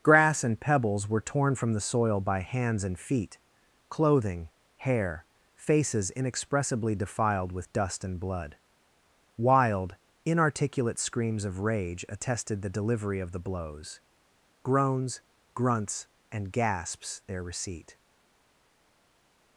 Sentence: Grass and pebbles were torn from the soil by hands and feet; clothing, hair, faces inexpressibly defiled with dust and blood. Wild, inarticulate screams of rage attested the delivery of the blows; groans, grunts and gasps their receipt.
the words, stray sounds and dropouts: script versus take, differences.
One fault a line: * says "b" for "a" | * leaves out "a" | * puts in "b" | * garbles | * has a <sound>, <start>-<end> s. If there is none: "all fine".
all fine